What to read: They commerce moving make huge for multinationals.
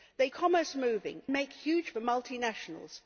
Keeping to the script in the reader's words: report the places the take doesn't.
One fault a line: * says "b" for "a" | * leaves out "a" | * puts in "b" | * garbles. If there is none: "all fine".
all fine